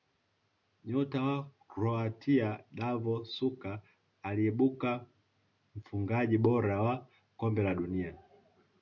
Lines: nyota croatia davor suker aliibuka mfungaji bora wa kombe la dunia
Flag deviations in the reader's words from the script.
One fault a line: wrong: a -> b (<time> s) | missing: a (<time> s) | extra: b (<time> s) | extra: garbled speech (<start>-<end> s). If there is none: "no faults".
extra: wa (1.2 s)